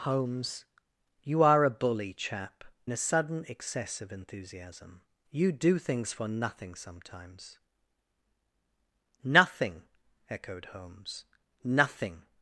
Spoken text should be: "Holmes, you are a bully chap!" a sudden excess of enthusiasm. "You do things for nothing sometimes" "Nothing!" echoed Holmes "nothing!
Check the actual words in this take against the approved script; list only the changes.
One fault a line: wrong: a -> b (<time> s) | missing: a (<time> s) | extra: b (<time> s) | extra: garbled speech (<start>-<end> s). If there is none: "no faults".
no faults